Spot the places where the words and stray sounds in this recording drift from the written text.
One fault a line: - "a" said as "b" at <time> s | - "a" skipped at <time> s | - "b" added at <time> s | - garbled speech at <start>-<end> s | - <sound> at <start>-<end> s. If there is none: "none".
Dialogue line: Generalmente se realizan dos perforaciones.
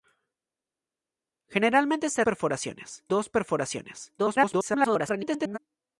- "realizan" said as "perforaciones" at 2.2 s
- garbled speech at 4.2-5.6 s